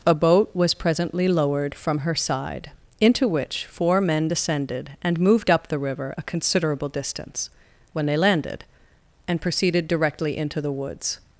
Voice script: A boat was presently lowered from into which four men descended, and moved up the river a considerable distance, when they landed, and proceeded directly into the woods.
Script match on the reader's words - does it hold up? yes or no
no